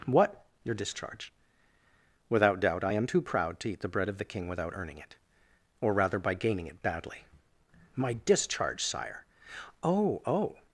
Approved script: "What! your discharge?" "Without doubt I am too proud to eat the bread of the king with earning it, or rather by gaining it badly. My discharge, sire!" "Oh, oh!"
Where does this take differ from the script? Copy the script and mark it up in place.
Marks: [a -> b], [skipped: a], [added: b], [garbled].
"What! your discharge?" "Without doubt I am too proud to eat the bread of the king [with -> without] earning it, or rather by gaining it badly. My discharge, sire!" "Oh, oh!"